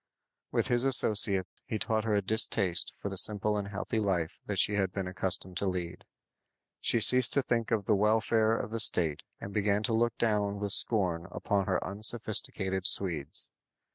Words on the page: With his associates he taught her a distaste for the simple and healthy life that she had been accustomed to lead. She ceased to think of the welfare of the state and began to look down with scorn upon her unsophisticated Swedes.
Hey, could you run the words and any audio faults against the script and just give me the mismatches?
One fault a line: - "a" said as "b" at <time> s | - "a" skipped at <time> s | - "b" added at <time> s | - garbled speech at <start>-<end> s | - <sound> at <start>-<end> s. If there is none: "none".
- dropout at 1.4-1.6 s